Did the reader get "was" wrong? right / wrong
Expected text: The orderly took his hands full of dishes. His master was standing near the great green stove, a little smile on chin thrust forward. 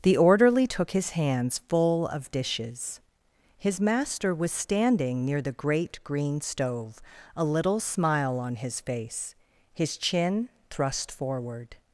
right